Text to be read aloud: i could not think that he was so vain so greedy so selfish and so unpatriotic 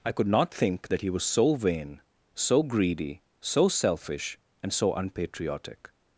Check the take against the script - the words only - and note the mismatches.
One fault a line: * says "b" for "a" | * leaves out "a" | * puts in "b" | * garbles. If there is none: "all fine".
all fine